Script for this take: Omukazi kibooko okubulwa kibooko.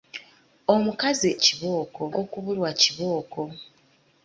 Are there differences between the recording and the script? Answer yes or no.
no